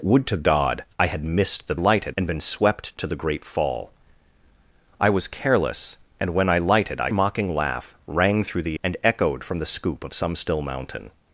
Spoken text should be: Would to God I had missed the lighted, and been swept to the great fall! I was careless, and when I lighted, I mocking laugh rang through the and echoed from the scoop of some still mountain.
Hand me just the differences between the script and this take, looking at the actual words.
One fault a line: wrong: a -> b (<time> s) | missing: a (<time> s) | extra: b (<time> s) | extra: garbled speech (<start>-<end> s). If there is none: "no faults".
no faults